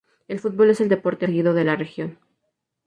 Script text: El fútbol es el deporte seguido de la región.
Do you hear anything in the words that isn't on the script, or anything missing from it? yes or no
no